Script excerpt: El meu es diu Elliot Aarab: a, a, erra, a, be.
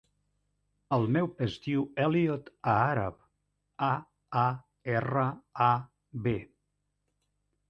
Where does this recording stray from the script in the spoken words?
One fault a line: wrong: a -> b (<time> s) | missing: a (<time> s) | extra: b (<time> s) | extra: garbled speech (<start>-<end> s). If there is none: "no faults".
no faults